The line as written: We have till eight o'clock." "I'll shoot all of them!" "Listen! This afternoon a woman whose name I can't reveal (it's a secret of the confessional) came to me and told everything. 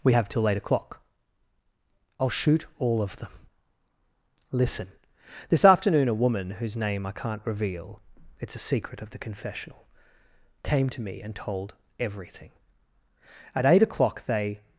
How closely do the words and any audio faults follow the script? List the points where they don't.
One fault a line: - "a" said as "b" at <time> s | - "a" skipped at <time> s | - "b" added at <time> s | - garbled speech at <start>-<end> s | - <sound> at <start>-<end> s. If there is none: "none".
- "At eight o'clock they" added at 13.6 s